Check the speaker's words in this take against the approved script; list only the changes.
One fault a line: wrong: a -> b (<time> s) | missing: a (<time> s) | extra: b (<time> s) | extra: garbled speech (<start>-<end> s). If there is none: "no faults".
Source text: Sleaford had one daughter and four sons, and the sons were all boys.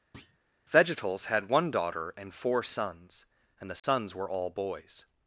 wrong: Sleaford -> Vegetals (0.7 s)